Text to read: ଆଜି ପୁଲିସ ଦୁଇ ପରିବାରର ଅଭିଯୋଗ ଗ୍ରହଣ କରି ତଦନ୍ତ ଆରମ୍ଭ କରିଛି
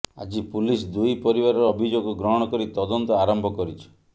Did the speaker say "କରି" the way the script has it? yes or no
yes